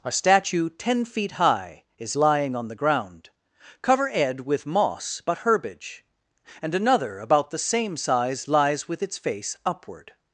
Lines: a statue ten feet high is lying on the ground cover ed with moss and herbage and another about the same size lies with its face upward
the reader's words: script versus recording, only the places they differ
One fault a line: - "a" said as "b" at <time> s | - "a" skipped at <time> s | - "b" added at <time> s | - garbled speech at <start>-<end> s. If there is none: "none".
- "and" said as "but" at 5.3 s